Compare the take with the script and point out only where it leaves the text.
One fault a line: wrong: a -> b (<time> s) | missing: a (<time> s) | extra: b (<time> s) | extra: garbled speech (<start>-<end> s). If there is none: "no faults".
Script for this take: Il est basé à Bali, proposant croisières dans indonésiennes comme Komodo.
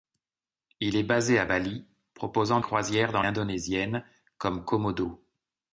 no faults